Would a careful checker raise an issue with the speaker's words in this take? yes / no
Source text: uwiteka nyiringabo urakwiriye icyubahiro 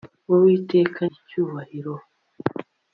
yes